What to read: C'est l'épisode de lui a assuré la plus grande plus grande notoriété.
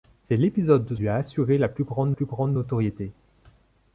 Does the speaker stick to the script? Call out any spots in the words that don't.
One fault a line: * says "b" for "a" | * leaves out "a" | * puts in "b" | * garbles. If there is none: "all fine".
all fine